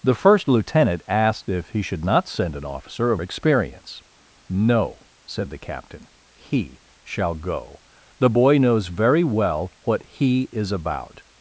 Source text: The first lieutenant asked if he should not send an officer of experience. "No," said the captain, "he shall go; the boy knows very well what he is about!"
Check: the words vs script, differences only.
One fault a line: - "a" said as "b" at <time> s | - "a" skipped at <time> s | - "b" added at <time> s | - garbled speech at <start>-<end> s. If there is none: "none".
none